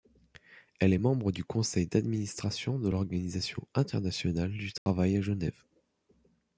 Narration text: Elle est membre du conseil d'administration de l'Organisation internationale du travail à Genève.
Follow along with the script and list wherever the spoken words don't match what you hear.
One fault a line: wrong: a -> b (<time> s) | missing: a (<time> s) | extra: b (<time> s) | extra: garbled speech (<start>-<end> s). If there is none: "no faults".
no faults